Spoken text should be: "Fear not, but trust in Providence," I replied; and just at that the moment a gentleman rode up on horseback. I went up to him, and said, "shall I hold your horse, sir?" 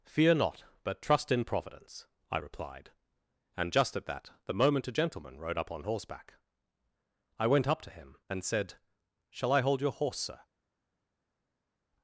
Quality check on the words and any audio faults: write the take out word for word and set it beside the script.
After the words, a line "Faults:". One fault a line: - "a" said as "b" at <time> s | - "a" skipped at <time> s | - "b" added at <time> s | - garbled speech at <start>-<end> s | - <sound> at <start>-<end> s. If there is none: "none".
"Fear not, but trust in Providence," I replied; and just at that the moment a gentleman rode up on horseback. I went up to him, and said, "shall I hold your horse, sir?"
Faults:
none